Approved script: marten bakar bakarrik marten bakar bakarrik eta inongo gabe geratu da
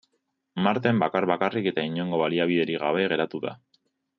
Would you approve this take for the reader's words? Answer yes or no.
no